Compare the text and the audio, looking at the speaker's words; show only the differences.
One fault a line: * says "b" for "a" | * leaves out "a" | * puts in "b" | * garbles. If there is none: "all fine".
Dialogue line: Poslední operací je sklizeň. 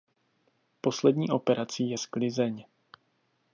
all fine